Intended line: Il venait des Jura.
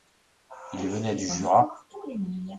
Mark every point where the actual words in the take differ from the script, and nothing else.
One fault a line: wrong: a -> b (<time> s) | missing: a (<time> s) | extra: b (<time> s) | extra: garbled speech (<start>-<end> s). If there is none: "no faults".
wrong: des -> du (1.1 s)